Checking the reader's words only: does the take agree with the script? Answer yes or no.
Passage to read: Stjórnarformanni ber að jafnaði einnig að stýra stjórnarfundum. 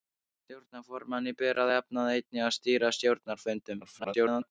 no